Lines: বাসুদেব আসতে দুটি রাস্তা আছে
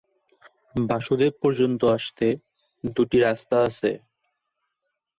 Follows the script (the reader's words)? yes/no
no